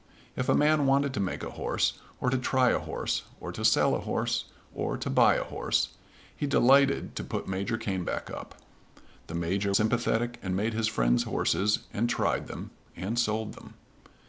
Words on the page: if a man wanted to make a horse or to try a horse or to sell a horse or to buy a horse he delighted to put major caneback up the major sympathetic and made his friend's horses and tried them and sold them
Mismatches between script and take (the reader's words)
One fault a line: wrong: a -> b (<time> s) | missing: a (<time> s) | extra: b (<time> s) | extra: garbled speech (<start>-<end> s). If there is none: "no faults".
no faults